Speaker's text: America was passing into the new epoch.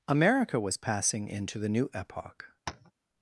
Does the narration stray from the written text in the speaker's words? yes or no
no